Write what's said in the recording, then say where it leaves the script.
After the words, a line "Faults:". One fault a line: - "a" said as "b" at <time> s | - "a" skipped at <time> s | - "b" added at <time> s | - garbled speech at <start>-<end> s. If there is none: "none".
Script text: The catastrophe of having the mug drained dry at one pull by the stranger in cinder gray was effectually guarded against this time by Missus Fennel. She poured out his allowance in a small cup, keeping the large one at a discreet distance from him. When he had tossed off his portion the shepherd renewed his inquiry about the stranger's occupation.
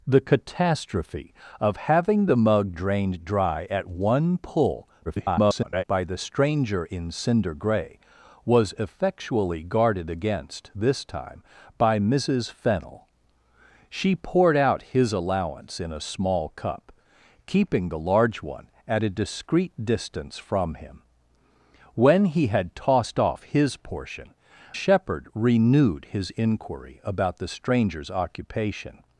The catastrophe of having the mug drained dry at one pull [garbled] by the stranger in cinder gray was effectually guarded against this time by Missus Fennel. She poured out his allowance in a small cup, keeping the large one at a discreet distance from him. When he had tossed off his portion shepherd renewed his inquiry about the stranger's occupation.
Faults:
- garbled speech at 5.1-5.8 s
- "the" skipped at 24.3 s